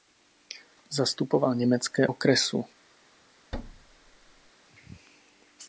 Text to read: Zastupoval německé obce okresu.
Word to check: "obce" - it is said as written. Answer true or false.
false